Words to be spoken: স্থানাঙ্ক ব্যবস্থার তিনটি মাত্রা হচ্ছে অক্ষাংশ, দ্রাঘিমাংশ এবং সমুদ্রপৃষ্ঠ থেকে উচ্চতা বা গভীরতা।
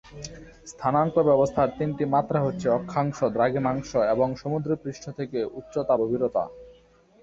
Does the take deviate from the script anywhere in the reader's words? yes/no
yes